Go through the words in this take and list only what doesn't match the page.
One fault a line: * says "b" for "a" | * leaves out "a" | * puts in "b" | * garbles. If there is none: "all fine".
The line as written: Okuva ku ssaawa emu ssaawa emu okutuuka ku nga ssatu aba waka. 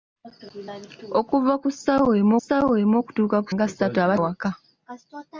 all fine